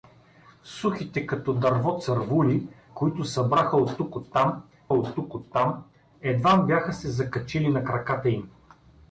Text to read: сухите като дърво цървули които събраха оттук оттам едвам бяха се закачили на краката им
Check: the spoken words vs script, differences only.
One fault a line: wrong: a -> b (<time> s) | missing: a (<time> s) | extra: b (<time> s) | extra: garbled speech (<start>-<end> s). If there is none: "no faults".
extra: оттук оттам (4.9 s)